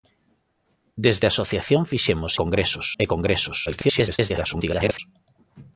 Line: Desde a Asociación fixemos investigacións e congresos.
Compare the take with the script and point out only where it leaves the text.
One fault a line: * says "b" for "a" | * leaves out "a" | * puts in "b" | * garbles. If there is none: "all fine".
* says "congresos" for "investigacións"
* garbles